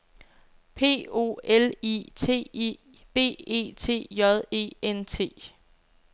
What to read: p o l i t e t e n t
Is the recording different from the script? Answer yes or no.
yes